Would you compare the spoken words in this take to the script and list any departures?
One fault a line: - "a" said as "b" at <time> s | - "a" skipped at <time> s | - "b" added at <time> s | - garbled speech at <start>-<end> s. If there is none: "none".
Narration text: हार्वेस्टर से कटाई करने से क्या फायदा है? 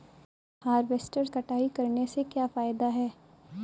- "से" skipped at 1.2 s